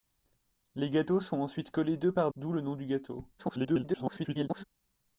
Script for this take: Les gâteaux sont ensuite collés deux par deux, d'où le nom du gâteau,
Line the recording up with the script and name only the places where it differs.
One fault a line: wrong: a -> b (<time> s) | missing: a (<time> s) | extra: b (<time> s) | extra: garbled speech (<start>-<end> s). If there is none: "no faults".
missing: deux (2.3 s)
extra: garbled speech (3.4-4.6 s)